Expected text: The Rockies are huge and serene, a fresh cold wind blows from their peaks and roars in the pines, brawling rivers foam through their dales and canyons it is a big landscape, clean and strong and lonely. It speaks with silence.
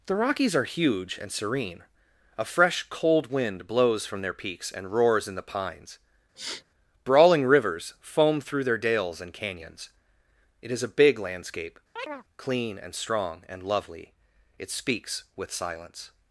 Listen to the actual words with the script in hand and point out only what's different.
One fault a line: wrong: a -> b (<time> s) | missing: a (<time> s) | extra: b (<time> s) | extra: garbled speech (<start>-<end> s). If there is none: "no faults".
wrong: lonely -> lovely (13.6 s)